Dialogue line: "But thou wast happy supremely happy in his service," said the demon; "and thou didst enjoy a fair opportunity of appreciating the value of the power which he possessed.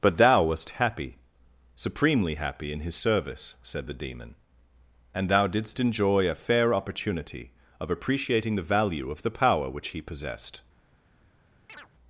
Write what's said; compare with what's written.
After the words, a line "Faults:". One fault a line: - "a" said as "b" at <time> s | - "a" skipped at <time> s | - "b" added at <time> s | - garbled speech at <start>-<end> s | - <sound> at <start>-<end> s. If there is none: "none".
"But thou wast happy supremely happy in his service," said the demon; "and thou didst enjoy a fair opportunity of appreciating the value of the power which he possessed.
Faults:
- chirp at 11.7-11.9 s